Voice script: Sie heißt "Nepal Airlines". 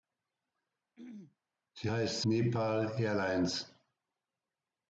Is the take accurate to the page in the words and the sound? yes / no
no